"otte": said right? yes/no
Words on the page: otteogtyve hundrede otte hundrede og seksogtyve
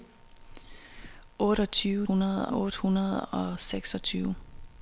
yes